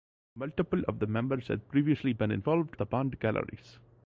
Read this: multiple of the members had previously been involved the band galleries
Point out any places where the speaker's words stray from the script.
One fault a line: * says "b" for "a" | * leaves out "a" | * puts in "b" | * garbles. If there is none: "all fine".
all fine